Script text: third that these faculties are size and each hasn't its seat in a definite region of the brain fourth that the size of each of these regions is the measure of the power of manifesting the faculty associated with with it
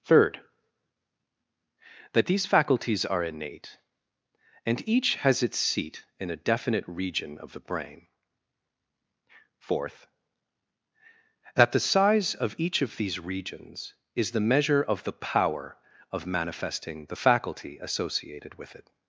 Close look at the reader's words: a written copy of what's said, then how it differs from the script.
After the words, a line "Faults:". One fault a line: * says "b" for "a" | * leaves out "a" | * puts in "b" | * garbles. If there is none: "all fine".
third that these faculties are innate and each has its seat in a definite region of the brain fourth that the size of each of these regions is the measure of the power of manifesting the faculty associated with it
Faults:
* says "innate" for "size"
* says "has" for "hasn't"
* leaves out "with"